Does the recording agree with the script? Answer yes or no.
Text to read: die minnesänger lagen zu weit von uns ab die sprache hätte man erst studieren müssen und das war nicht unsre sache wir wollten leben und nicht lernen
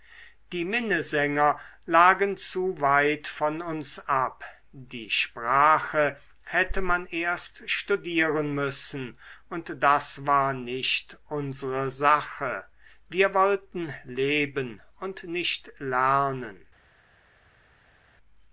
yes